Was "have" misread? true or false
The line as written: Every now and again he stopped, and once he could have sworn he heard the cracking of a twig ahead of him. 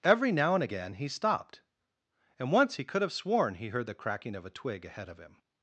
false